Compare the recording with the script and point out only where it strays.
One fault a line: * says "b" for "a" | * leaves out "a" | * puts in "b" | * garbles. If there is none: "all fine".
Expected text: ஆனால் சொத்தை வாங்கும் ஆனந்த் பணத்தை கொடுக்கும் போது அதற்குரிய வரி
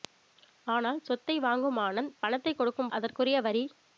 * leaves out "போது"